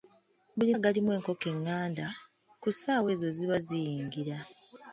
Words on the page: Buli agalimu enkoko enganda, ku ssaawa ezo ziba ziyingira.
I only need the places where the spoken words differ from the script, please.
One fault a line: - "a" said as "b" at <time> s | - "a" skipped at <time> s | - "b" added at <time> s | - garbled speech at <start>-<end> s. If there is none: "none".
none